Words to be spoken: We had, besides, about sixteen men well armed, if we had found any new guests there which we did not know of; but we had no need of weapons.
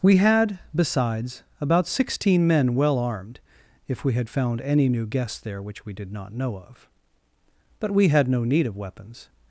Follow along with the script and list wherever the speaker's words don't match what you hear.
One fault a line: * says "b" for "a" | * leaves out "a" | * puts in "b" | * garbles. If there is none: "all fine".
all fine